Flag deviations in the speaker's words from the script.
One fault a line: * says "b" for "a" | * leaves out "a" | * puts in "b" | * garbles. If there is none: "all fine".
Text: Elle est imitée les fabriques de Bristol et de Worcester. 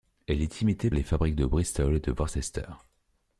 all fine